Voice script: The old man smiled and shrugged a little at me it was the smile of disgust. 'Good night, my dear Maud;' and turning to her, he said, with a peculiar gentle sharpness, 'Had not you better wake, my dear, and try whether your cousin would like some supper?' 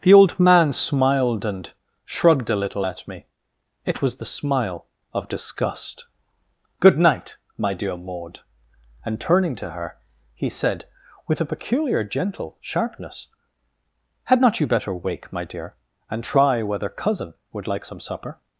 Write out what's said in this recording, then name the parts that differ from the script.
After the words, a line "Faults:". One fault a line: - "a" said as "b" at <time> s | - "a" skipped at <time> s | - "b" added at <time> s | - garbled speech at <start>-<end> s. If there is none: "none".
The old man smiled and shrugged a little at me it was the smile of disgust. 'Good night, my dear Maud;' and turning to her, he said, with a peculiar gentle sharpness, 'Had not you better wake, my dear, and try whether cousin would like some supper?'
Faults:
- "your" skipped at 16.9 s